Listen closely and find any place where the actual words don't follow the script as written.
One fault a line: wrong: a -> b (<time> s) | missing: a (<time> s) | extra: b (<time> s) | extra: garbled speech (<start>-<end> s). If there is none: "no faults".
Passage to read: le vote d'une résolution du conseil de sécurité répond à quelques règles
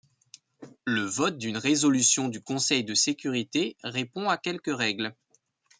no faults